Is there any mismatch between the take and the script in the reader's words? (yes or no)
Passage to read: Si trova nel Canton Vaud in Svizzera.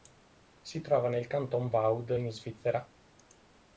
no